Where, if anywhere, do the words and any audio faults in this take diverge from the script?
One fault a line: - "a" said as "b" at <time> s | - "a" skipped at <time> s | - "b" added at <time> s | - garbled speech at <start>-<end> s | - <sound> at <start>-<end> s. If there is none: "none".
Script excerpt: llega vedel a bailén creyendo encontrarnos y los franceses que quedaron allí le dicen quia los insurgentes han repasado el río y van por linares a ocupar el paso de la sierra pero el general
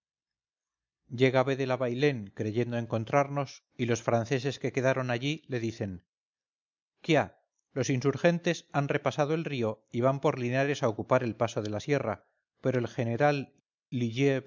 none